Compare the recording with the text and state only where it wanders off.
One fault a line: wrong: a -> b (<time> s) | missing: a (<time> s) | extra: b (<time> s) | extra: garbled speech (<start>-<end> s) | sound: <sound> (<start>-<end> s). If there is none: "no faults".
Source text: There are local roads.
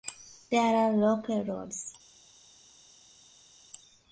no faults